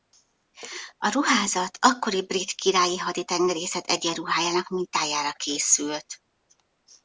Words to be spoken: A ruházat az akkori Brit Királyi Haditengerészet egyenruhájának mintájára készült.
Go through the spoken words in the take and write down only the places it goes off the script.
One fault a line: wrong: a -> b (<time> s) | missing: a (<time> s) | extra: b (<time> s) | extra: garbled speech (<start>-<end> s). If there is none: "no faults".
missing: az (1.8 s)